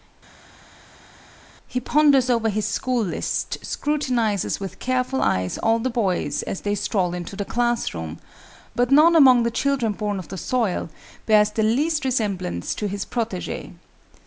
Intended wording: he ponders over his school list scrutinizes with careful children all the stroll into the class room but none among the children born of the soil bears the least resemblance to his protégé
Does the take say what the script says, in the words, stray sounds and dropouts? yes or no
no